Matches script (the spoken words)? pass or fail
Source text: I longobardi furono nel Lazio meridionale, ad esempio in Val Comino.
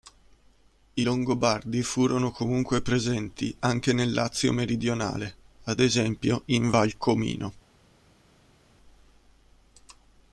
fail